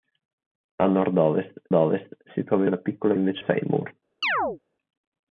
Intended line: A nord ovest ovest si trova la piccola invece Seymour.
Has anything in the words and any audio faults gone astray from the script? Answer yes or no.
yes